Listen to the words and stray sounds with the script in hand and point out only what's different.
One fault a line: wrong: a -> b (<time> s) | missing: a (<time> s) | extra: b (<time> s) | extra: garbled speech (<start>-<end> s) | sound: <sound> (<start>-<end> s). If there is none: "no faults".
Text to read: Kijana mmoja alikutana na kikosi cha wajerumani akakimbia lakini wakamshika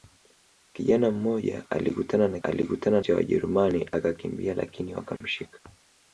wrong: kikosi -> alikutana (2.4 s)
sound: dropout (5.2-5.2 s)